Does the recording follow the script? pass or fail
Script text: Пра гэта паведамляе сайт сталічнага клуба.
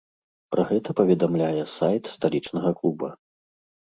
pass